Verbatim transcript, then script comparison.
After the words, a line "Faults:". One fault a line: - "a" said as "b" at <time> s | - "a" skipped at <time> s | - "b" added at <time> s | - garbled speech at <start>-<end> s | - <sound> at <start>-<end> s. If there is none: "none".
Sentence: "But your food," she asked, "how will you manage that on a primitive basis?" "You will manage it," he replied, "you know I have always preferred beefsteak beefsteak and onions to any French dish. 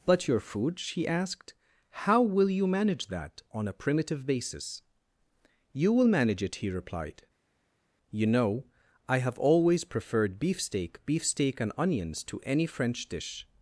"But your food," she asked, "how will you manage that on a primitive basis?" "You will manage it," he replied, "you know I have always preferred beefsteak beefsteak and onions to any French dish.
Faults:
none